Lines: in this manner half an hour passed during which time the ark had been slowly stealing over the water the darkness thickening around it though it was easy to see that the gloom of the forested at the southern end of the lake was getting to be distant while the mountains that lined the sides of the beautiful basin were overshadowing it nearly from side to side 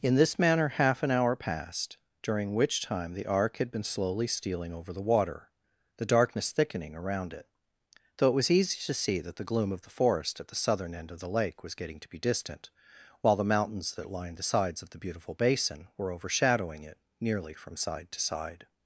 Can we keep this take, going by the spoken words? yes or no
no